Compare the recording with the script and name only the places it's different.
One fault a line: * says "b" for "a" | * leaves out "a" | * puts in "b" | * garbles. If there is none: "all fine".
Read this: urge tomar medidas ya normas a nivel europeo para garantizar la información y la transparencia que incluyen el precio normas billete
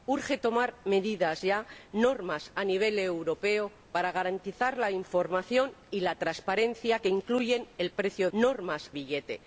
all fine